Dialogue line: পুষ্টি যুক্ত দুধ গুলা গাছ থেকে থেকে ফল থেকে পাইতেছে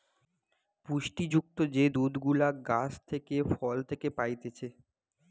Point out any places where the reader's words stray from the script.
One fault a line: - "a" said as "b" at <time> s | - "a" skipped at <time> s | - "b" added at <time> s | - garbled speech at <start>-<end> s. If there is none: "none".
- "যে" added at 1.7 s
- "থেকে" skipped at 3.4 s